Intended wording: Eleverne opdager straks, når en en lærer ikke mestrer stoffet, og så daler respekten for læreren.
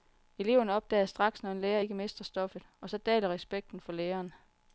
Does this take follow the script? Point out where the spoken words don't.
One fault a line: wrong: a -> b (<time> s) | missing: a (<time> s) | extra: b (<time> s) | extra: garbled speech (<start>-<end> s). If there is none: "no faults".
missing: en (1.6 s)